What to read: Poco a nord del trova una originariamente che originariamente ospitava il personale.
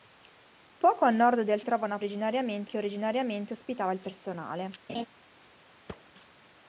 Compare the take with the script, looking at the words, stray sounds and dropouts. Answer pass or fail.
fail